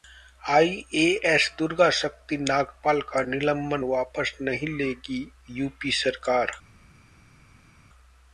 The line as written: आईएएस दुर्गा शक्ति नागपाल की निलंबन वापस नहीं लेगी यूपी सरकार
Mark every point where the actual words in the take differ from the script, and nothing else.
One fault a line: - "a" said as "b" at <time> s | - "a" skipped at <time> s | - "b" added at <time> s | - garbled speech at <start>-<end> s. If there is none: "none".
- "की" said as "का" at 3.0 s